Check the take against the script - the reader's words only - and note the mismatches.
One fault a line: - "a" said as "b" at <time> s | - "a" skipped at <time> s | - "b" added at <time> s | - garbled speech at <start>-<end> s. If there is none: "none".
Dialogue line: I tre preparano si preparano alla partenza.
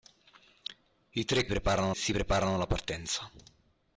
none